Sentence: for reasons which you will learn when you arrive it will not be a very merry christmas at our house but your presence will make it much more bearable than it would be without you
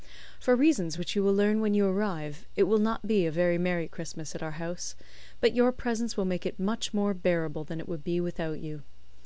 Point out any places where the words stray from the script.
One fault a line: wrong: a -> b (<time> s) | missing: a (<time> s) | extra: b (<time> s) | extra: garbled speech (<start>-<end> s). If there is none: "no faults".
no faults